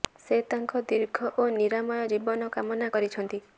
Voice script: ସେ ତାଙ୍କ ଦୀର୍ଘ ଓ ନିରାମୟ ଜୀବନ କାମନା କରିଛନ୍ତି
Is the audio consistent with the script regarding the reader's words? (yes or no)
yes